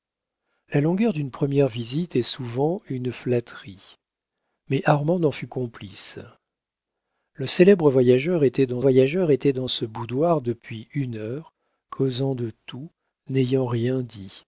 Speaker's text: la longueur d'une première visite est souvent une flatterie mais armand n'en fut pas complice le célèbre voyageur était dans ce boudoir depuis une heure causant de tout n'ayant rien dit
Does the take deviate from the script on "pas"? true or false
true